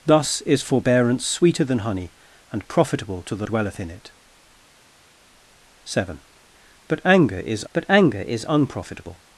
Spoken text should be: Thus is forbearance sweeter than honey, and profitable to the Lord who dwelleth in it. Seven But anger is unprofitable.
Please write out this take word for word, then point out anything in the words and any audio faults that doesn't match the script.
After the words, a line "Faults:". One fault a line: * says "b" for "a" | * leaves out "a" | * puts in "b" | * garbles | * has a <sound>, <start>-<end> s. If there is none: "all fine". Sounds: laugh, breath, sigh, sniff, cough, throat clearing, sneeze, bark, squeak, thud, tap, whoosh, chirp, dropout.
Thus is forbearance sweeter than honey, and profitable to the Dwelleth in it. Seven But anger is But anger is unprofitable.
Faults:
* leaves out "Lord who"
* puts in "But anger is"